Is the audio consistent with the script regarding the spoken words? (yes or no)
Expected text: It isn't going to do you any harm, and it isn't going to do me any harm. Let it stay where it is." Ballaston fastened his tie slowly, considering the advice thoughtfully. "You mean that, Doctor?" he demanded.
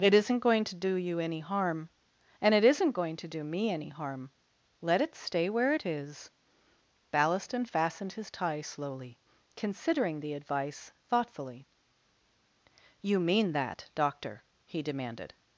yes